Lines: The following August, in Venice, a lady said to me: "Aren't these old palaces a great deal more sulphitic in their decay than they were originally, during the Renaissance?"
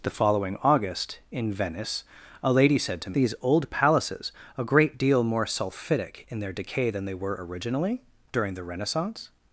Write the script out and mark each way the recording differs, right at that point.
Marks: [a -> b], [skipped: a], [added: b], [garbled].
The following August, in Venice, a lady said to [skipped: me: "Aren't] these old palaces a great deal more sulphitic in their decay than they were originally, during the Renaissance?"